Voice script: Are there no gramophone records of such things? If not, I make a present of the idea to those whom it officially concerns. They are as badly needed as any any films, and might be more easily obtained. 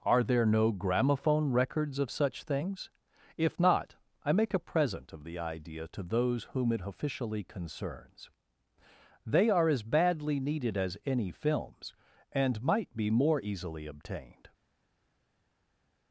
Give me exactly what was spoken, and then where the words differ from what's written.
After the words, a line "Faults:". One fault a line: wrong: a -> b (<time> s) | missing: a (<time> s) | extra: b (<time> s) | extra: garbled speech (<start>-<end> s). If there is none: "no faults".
Are there no gramophone records of such things? If not, I make a present of the idea to those whom it officially concerns. They are as badly needed as any films, and might be more easily obtained.
Faults:
missing: any (11.3 s)